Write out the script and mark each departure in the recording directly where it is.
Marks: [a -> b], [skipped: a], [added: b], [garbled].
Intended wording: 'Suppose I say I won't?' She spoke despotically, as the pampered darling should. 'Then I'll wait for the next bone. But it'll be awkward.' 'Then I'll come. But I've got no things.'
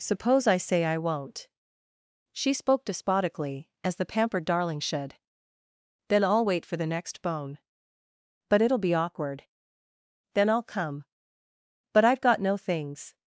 'Suppose I say I won't?' She spoke despotically, as the pampered darling should. 'Then I'll wait for the next bone. But it'll be awkward.' 'Then I'll come. But I've got no things.'